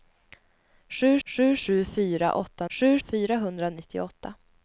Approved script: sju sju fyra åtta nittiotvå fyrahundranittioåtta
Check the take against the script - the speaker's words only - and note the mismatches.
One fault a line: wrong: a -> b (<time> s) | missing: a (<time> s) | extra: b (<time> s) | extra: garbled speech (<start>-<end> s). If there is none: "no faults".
extra: sju (1.6 s)
wrong: nittiotvå -> sju (2.7 s)